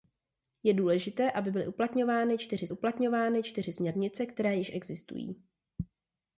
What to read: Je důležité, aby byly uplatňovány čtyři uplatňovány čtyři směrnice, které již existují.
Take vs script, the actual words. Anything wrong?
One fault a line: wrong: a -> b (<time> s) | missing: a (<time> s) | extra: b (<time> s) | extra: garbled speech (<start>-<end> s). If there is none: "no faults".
no faults